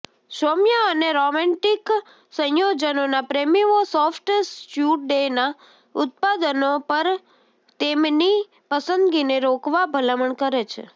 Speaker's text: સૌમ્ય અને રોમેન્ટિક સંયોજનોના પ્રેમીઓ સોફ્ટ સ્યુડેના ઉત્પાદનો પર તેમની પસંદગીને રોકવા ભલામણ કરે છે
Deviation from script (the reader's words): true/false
false